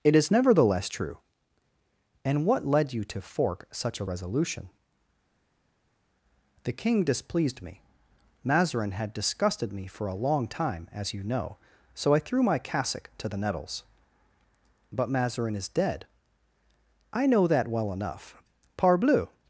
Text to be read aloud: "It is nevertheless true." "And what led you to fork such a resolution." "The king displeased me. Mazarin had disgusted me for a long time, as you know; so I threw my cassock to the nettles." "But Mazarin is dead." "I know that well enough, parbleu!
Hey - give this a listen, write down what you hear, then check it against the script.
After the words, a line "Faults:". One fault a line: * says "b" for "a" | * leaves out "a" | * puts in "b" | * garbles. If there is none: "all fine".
"It is nevertheless true." "And what led you to fork such a resolution." "The king displeased me. Mazarin had disgusted me for a long time, as you know; so I threw my cassock to the nettles." "But Mazarin is dead." "I know that well enough, parbleu!
Faults:
all fine